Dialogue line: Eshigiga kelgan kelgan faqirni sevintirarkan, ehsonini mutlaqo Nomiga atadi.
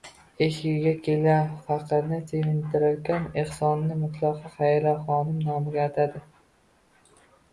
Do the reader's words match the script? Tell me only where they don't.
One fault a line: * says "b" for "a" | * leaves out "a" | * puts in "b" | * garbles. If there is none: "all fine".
* leaves out "kelgan"
* puts in "Xayriyaxonim"